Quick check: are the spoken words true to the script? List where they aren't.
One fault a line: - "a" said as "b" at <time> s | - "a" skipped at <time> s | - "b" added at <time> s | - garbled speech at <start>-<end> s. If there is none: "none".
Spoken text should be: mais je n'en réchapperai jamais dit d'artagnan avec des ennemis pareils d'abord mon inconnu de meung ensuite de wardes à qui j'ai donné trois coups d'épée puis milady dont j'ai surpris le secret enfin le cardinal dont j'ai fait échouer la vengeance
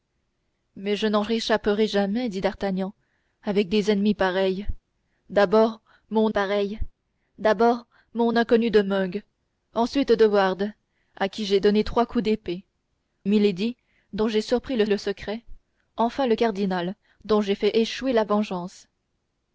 - "pareils d'abord mon" added at 6.3 s
- "puis" skipped at 12.6 s
- "le" added at 14.9 s